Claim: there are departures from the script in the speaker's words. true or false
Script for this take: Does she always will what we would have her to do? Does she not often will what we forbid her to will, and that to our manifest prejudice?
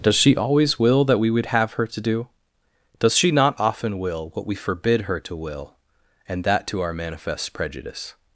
true